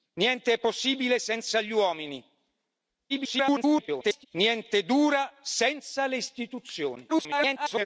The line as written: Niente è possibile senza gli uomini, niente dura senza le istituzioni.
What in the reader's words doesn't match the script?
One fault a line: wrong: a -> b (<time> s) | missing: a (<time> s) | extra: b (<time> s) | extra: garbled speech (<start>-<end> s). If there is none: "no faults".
extra: garbled speech (3.1-4.3 s)
extra: garbled speech (7.1-7.9 s)